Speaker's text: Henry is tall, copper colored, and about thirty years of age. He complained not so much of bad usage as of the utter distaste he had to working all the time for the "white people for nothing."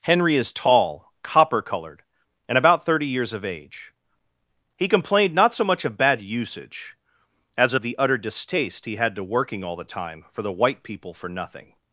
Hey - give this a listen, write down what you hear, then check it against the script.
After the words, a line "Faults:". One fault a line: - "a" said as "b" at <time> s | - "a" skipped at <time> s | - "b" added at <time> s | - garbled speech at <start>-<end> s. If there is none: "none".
Henry is tall, copper colored, and about thirty years of age. He complained not so much of bad usage as of the utter distaste he had to working all the time for the "white people for nothing."
Faults:
none